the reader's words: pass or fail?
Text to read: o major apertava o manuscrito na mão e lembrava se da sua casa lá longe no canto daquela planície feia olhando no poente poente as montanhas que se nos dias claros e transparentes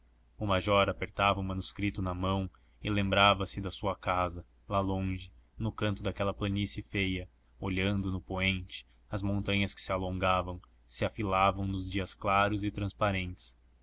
fail